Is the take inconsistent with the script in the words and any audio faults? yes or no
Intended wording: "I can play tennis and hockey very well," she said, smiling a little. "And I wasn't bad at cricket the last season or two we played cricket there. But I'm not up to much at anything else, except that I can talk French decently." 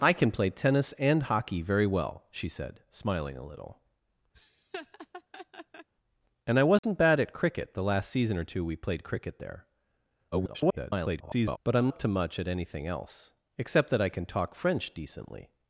yes